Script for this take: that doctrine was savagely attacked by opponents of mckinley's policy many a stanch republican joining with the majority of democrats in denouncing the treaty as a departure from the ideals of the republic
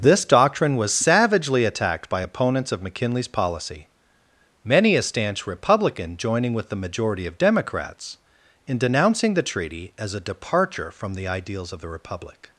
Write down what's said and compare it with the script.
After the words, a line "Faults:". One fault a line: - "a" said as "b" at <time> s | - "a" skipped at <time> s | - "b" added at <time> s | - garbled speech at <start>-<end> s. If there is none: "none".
this doctrine was savagely attacked by opponents of mckinley's policy many a stanch republican joining with the majority of democrats in denouncing the treaty as a departure from the ideals of the republic
Faults:
- "that" said as "this" at 0.0 s